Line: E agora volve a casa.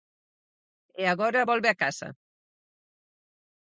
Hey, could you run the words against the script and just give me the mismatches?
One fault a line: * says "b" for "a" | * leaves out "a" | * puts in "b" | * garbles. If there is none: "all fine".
all fine